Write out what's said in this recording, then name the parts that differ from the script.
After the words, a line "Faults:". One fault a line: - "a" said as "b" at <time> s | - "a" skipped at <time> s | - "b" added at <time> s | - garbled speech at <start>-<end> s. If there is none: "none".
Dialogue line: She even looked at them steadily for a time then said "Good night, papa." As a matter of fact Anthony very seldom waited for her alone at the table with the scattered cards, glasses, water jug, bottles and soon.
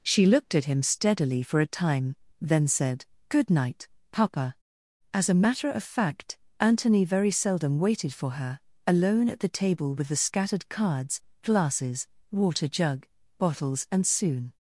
She looked at him steadily for a time then said "Good night, papa." As a matter of fact Anthony very seldom waited for her alone at the table with the scattered cards, glasses, water jug, bottles and soon.
Faults:
- "even" skipped at 0.2 s
- "them" said as "him" at 0.7 s